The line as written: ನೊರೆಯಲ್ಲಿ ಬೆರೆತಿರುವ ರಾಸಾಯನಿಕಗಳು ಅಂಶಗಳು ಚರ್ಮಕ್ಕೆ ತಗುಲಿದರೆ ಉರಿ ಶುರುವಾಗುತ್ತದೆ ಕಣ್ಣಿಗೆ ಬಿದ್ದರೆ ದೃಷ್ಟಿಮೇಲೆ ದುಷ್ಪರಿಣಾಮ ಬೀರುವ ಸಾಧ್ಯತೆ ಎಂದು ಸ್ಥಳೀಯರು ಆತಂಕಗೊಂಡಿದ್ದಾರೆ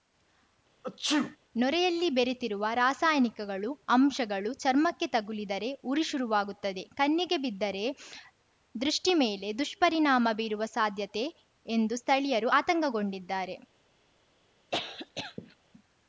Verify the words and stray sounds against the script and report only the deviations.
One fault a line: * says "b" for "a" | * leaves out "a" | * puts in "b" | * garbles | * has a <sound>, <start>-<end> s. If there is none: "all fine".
* has a sneeze, 0.8-1.4 s
* has a cough, 14.7-15.6 s